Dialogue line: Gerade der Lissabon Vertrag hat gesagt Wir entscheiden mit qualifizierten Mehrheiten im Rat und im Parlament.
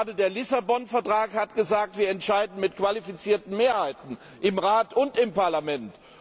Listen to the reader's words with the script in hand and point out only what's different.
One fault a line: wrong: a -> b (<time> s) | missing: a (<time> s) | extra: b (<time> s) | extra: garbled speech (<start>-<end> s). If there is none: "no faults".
no faults